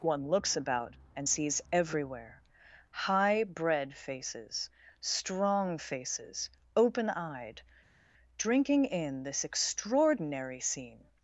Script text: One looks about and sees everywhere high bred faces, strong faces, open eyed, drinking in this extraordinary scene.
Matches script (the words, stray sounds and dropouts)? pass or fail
pass